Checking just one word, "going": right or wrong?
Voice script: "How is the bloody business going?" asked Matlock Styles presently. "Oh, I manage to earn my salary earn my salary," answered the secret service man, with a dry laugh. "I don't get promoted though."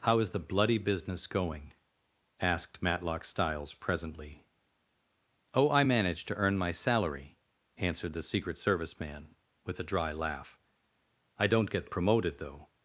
right